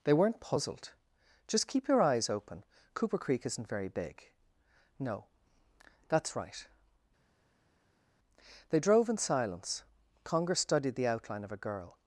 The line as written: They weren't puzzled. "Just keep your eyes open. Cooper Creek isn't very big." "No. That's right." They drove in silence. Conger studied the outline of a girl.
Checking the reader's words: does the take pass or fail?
pass